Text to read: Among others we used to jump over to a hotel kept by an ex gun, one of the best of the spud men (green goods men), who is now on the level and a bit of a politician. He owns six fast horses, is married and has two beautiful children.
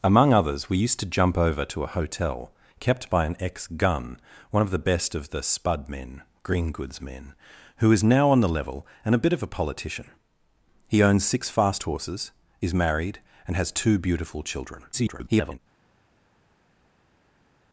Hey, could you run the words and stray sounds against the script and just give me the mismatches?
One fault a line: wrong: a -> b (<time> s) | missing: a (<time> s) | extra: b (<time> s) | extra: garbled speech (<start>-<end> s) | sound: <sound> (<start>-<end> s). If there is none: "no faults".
extra: garbled speech (14.9-15.6 s)